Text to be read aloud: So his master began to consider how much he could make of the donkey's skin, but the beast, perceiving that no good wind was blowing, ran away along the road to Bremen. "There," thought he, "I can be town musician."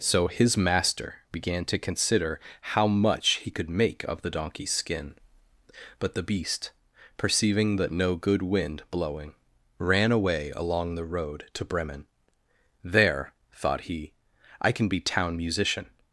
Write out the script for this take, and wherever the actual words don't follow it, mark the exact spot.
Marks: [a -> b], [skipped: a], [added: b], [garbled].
So his master began to consider how much he could make of the donkey's skin, but the beast, perceiving that no good wind [skipped: was] blowing, ran away along the road to Bremen. "There," thought he, "I can be town musician."